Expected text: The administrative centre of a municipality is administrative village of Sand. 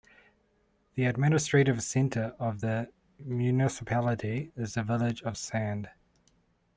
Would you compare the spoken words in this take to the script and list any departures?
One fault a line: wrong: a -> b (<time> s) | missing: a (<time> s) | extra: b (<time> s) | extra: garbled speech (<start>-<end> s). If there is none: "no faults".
wrong: a -> the (2.6 s)
wrong: administrative -> the (4.7 s)